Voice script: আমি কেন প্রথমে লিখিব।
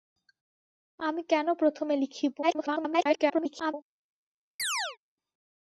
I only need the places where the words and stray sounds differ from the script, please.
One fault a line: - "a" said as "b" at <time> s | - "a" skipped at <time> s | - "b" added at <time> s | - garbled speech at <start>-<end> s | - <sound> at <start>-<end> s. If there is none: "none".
- garbled speech at 2.4-3.7 s
- chirp at 4.6-5.0 s